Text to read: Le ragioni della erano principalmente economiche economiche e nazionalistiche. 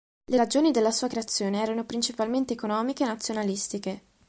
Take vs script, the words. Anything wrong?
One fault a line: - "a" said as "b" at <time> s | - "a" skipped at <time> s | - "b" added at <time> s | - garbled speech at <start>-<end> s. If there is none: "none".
- "sua creazione" added at 0.9 s
- "economiche" skipped at 3.0 s